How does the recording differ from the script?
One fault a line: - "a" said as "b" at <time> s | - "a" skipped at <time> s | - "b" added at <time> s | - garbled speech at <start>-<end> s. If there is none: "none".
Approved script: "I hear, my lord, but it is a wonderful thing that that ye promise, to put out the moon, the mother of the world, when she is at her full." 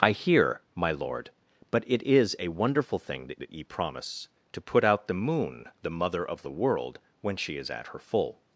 none